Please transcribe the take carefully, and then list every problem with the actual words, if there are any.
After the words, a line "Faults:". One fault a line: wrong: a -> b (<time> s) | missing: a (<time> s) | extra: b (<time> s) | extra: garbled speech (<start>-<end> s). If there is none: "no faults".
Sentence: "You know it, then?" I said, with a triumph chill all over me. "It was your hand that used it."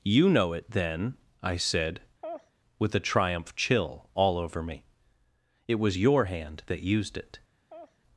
"You know it, then?" I said, with a triumph chill all over me. "It was your hand that used it."
Faults:
no faults